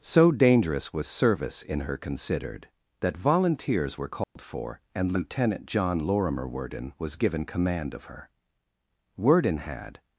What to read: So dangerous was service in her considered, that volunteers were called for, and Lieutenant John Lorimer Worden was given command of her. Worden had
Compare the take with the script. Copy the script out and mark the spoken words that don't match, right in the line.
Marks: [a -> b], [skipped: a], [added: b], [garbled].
So dangerous was service in her considered, that volunteers were called for, and Lieutenant John Lorimer Worden was given command of her. Worden had